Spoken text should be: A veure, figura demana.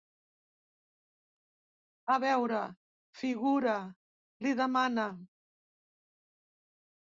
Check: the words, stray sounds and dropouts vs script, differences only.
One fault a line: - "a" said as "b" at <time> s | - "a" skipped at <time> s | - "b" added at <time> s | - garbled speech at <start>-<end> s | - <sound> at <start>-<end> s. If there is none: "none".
- "li" added at 4.5 s